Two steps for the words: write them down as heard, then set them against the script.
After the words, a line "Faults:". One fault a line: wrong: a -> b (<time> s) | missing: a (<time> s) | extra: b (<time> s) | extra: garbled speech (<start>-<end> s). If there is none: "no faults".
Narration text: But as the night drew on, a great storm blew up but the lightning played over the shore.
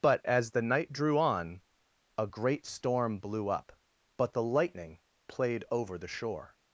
But as the night drew on, a great storm blew up but the lightning played over the shore.
Faults:
no faults